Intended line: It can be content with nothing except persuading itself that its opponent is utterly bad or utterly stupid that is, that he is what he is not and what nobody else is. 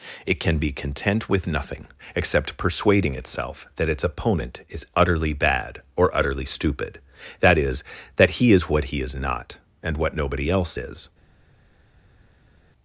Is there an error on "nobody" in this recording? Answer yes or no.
no